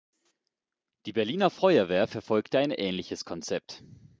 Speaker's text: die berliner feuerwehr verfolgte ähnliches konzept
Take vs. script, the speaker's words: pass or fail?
fail